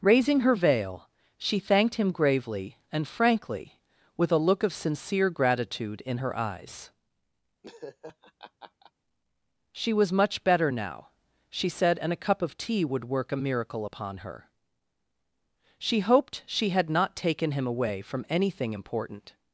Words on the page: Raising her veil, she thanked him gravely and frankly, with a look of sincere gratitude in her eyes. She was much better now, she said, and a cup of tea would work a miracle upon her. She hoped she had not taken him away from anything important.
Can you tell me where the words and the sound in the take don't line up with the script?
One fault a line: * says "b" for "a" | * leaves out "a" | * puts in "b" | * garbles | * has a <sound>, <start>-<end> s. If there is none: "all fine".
* has a laugh, 7.6-8.9 s